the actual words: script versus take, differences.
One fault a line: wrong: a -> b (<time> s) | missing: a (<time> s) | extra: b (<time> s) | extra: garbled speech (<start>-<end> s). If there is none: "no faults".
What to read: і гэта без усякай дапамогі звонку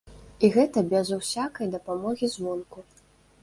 no faults